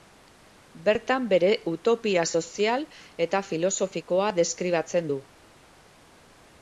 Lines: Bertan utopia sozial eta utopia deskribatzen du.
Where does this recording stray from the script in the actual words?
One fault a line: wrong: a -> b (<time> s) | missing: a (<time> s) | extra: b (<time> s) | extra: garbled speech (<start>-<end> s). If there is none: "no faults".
extra: bere (1.3 s)
wrong: utopia -> filosofikoa (3.5 s)